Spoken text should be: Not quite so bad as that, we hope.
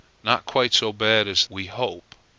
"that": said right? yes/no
no